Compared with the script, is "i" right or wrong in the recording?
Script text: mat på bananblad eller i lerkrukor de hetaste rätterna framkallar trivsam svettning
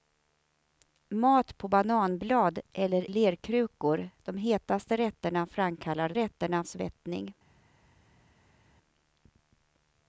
wrong